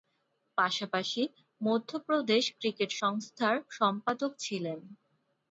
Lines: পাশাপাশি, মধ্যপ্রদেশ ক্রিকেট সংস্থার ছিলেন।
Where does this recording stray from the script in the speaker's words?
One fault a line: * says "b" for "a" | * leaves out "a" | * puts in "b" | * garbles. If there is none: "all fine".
* puts in "সম্পাদক"